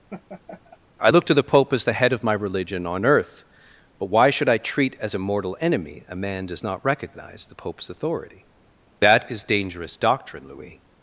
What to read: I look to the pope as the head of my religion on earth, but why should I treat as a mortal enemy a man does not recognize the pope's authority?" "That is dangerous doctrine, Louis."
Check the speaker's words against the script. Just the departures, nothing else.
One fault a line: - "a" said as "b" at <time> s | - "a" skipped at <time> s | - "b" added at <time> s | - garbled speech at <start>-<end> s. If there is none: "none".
none